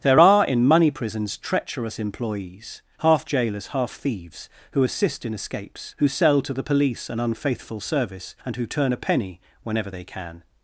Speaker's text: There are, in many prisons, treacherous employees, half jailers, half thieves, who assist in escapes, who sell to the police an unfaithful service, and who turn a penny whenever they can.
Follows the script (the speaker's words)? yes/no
no